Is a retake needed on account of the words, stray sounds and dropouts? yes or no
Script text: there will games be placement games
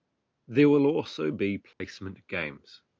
yes